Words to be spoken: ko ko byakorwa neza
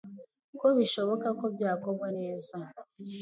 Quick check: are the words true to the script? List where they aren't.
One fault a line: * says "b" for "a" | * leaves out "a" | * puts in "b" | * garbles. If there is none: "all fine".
* puts in "bishoboka"